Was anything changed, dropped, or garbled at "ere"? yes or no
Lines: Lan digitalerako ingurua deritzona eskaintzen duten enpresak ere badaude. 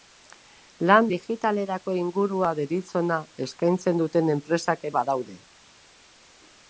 yes